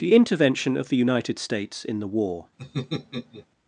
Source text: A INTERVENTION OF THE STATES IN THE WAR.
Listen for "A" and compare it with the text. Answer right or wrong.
wrong